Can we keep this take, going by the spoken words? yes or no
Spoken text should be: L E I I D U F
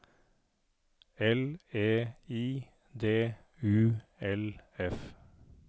no